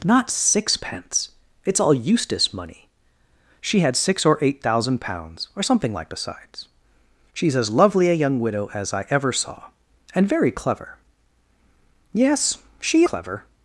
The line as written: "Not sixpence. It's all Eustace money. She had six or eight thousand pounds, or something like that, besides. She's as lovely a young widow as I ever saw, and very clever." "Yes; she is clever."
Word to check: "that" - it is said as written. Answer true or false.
false